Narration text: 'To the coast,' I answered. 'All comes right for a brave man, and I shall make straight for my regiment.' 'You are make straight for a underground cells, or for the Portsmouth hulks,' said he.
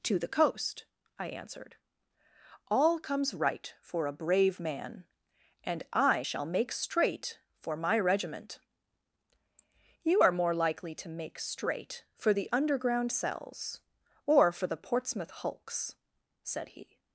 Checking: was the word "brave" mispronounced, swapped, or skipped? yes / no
no